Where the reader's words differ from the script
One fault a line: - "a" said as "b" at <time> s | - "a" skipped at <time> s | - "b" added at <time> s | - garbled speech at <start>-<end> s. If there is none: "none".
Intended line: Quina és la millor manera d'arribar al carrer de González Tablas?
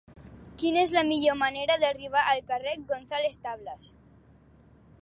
none